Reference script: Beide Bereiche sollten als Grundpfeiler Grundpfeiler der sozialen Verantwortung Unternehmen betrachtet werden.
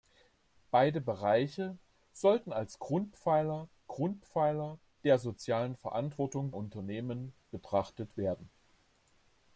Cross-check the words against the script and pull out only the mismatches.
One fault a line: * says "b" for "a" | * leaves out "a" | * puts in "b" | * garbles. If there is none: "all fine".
all fine